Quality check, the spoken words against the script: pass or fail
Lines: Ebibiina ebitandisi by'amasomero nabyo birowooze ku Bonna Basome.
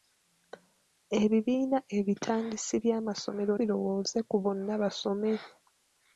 fail